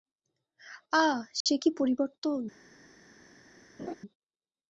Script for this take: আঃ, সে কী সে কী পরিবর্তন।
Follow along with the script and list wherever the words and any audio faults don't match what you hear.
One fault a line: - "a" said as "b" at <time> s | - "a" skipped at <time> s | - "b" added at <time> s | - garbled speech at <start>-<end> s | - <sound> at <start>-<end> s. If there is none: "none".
- dropout at 1.4-1.5 s
- "সে কী" skipped at 1.7 s
- laugh at 3.8-4.0 s